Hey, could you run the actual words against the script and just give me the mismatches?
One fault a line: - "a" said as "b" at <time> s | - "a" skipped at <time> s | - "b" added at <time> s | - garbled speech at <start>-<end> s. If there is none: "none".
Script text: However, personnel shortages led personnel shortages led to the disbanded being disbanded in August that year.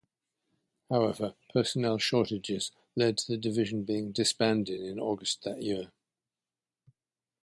- "personnel shortages led" skipped at 3.2 s
- "disbanded" said as "division" at 3.4 s